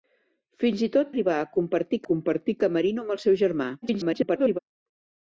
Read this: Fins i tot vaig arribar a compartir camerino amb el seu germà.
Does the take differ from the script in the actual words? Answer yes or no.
yes